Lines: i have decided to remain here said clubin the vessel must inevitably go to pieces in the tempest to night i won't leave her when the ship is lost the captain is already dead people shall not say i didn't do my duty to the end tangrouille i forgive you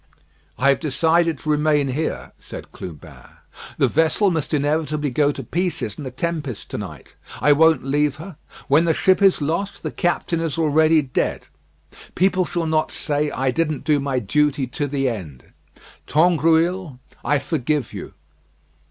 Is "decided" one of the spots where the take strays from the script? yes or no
no